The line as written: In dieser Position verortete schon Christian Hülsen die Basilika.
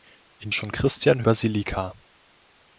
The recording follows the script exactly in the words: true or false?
false